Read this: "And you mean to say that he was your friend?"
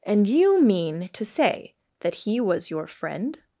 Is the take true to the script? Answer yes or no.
yes